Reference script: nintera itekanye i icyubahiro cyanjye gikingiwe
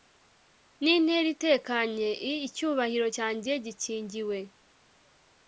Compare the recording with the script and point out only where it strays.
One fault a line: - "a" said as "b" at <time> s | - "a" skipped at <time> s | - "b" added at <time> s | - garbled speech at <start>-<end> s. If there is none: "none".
none